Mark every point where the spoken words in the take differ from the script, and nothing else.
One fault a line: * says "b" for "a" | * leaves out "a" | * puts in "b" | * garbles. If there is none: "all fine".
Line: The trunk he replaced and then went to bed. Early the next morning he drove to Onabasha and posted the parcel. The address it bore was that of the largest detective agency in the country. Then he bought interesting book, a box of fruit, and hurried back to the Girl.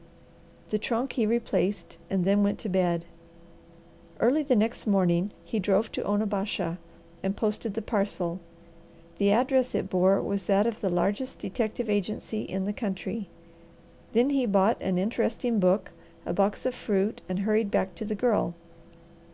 * puts in "an"